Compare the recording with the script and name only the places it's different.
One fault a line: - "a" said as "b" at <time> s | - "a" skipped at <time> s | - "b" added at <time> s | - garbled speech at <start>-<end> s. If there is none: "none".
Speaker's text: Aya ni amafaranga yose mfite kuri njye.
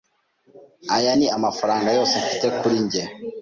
none